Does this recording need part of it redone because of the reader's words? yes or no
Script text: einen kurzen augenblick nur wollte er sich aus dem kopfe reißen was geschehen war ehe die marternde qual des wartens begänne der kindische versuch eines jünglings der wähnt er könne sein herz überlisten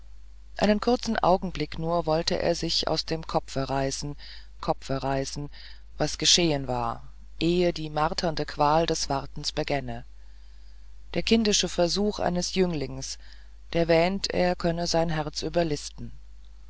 yes